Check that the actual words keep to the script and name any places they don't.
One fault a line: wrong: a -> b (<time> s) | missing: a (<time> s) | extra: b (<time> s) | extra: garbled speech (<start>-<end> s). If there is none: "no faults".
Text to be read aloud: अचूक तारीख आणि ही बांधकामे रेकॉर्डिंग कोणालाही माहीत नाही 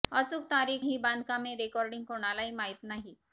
missing: आणि (0.8 s)